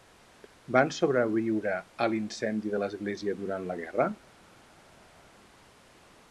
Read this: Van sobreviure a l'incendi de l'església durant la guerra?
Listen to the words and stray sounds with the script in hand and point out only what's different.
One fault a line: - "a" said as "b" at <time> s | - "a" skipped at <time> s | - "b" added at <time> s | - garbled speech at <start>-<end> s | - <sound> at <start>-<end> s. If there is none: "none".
none